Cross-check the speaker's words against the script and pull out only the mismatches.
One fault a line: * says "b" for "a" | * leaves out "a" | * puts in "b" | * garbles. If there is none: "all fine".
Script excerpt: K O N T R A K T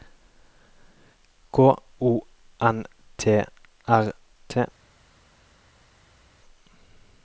* leaves out "A K"